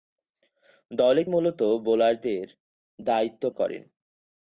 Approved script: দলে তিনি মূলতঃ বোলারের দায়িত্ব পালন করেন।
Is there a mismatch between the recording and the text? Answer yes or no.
yes